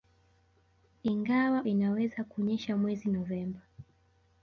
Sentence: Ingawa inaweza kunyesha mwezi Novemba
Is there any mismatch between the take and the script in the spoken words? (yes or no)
no